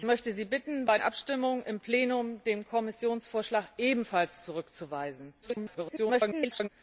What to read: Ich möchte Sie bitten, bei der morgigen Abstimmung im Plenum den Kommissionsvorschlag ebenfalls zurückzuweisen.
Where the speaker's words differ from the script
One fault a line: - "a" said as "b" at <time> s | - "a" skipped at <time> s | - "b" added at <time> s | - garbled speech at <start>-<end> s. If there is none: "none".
- "der morgigen" skipped at 1.0 s
- garbled speech at 5.4-6.7 s